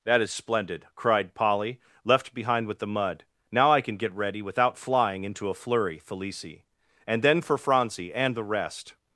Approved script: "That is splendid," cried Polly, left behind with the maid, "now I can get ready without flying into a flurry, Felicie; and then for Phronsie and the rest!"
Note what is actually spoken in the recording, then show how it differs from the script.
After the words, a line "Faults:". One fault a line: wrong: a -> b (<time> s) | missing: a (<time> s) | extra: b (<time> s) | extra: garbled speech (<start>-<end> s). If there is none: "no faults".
"That is splendid," cried Polly, left behind with the mud, "now I can get ready without flying into a flurry, Felicie; and then for Phronsie and the rest!"
Faults:
wrong: maid -> mud (2.9 s)